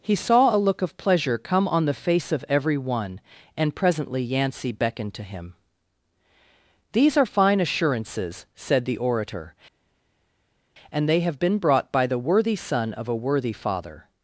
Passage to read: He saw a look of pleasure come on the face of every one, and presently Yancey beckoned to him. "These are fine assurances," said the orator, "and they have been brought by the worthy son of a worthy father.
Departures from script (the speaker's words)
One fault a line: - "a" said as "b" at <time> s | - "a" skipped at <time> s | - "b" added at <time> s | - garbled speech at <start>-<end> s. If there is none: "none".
none